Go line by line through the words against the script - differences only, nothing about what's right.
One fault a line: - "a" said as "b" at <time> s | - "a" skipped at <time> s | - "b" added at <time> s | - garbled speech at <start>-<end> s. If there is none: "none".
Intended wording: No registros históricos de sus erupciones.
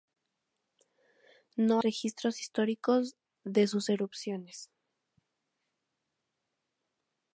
none